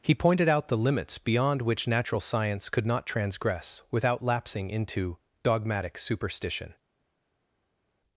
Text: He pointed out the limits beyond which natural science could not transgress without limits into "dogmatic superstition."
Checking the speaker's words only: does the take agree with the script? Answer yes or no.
no